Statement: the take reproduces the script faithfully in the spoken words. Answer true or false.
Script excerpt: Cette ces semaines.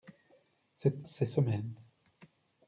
true